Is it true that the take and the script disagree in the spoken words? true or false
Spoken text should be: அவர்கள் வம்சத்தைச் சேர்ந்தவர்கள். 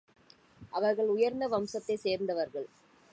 true